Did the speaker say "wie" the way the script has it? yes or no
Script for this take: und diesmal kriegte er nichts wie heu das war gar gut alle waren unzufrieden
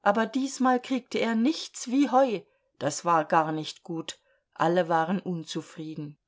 yes